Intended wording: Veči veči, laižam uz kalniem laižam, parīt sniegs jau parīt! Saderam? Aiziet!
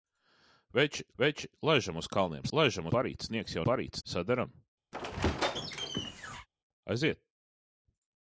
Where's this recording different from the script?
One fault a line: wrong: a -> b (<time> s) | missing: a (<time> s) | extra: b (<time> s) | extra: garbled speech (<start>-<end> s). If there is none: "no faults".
no faults